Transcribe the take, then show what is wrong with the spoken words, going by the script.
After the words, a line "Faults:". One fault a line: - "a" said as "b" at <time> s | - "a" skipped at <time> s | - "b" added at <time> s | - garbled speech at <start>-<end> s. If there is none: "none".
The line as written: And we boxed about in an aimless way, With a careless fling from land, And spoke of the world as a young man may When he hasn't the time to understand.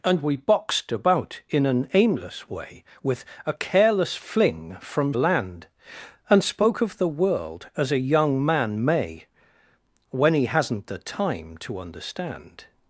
And we boxed about in an aimless way, With a careless fling from land, And spoke of the world as a young man may When he hasn't the time to understand.
Faults:
none